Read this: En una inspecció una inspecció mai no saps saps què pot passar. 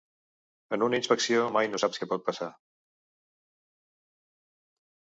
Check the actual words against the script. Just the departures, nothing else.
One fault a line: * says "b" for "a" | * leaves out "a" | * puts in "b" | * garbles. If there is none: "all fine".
* leaves out "una inspecció"
* leaves out "saps"